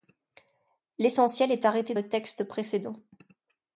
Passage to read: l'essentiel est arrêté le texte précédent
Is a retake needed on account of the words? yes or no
no